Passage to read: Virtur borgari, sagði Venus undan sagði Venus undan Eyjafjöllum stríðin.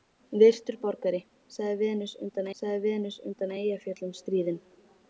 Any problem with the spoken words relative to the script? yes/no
no